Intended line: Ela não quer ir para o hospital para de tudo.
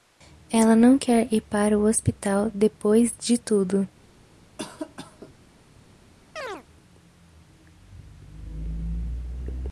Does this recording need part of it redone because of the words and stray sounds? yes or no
yes